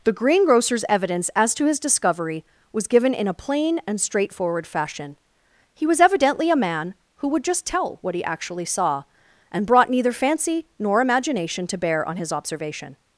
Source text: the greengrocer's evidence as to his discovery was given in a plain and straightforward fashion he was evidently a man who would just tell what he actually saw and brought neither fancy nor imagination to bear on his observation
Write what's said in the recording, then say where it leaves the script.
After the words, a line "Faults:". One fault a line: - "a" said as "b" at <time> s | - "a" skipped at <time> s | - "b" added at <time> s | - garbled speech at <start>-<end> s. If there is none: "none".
the greengrocer's evidence as to his discovery was given in a plain and straightforward fashion he was evidently a man who would just tell what he actually saw and brought neither fancy nor imagination to bear on his observation
Faults:
none